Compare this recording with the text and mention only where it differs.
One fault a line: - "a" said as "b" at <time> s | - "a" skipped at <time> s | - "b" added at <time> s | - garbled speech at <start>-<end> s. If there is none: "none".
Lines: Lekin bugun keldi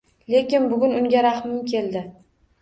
- "unga rahmim" added at 1.0 s